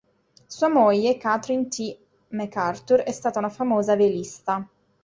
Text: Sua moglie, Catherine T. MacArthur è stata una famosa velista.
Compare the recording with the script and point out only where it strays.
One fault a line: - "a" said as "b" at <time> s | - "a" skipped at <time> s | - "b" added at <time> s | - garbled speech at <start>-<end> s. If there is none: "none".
none